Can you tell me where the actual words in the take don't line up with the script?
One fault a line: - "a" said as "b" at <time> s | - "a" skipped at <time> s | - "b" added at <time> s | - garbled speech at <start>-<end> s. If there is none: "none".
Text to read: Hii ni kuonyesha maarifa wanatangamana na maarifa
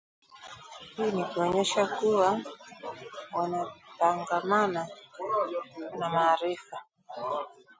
- "maarifa" said as "kuwa" at 1.9 s